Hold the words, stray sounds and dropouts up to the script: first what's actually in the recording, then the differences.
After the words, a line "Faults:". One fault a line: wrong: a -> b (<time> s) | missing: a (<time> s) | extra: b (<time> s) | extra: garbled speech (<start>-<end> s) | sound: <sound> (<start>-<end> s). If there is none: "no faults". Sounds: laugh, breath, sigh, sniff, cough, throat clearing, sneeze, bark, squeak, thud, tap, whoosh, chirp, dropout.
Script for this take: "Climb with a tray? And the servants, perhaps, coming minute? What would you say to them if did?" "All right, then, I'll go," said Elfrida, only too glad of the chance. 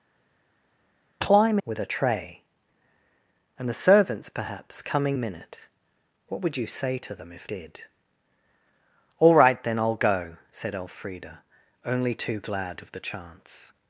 "Climb with a tray? And the servants, perhaps, coming minute? What would you say to them if did?" "All right, then, I'll go," said Elfrida, only too glad of the chance.
Faults:
no faults